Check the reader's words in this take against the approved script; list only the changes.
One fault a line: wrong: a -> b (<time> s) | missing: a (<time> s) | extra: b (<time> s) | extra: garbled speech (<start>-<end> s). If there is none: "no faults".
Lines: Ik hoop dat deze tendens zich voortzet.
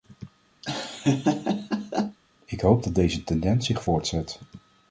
no faults